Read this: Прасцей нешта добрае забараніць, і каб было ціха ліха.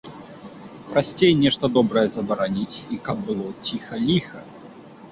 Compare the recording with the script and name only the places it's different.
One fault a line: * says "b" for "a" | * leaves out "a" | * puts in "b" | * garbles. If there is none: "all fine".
all fine